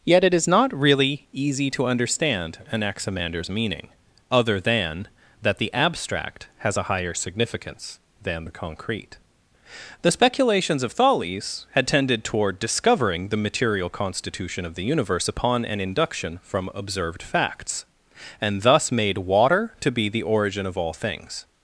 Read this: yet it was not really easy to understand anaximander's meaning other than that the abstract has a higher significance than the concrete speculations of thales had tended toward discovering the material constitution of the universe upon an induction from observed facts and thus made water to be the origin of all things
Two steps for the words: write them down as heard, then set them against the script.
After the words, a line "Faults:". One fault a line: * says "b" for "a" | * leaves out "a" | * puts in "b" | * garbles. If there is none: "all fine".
yet it is not really easy to understand anaximander's meaning other than that the abstract has a higher significance than the concrete the speculations of thales had tended toward discovering the material constitution of the universe upon an induction from observed facts and thus made water to be the origin of all things
Faults:
* says "is" for "was"
* puts in "the"